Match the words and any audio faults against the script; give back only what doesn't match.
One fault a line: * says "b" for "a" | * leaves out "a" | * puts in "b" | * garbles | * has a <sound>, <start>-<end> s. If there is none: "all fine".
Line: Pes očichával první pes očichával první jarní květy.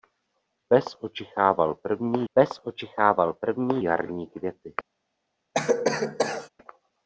* has a cough, 5.5-6.5 s